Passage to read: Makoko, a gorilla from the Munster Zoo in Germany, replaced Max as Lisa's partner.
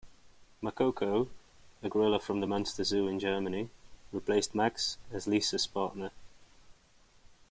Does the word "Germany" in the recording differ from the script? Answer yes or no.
no